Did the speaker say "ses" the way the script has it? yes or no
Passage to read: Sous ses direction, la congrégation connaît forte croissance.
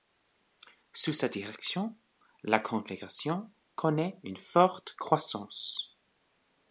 no